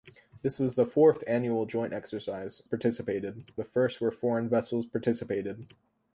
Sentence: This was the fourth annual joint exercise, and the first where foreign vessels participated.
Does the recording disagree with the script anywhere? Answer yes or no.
yes